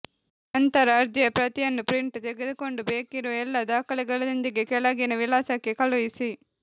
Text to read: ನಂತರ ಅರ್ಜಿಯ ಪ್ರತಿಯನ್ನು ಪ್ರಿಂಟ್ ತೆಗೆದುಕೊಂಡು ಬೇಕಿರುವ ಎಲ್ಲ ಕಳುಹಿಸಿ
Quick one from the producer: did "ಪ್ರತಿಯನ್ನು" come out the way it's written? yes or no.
yes